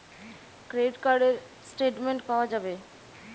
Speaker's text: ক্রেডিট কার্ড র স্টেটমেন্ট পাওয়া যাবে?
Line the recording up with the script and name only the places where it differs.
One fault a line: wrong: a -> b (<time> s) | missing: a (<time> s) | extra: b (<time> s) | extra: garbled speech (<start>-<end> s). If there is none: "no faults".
no faults